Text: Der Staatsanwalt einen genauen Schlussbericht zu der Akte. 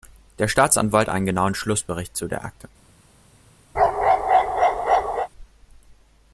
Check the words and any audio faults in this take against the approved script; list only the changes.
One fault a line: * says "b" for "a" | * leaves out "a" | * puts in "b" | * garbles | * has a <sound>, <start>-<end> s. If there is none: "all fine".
* has a bark, 3.7-5.3 s